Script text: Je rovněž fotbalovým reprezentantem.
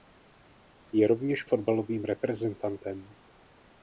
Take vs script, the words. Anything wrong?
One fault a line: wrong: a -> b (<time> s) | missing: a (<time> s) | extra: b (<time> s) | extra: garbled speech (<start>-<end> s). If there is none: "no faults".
no faults